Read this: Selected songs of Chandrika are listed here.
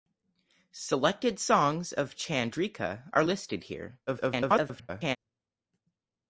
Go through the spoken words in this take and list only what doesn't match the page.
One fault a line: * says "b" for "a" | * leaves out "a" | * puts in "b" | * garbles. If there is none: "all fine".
* garbles